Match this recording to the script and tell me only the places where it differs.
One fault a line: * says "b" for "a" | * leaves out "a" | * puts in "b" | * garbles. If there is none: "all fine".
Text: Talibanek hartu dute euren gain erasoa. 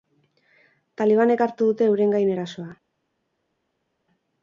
all fine